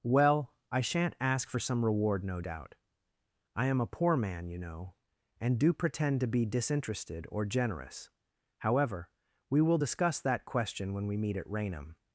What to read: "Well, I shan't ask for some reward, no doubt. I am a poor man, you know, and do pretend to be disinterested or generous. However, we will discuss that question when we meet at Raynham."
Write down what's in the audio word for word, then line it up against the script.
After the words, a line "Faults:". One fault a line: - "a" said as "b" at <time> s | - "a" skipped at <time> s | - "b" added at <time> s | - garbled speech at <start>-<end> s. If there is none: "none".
"Well, I shan't ask for some reward, no doubt. I am a poor man, you know, and do pretend to be disinterested or generous. However, we will discuss that question when we meet at Raynham."
Faults:
none